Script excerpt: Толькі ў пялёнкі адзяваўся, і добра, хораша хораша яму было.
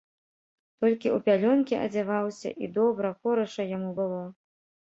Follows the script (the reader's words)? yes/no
no